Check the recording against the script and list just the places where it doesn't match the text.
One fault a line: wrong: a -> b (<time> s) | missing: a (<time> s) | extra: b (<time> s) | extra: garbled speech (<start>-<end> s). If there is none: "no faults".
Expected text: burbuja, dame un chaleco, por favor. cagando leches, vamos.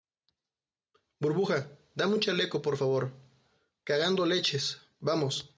no faults